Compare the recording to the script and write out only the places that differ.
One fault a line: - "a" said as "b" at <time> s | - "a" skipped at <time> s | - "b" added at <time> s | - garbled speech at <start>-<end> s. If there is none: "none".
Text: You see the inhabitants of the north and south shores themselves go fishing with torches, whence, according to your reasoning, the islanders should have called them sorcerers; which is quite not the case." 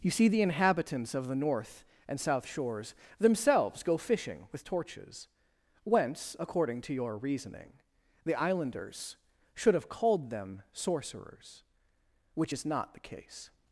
- "quite" skipped at 12.7 s